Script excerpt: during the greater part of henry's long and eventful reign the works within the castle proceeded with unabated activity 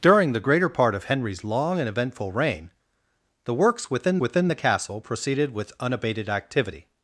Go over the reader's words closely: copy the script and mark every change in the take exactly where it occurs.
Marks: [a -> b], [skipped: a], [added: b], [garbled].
during the greater part of henry's long and eventful reign the works within [added: within] the castle proceeded with unabated activity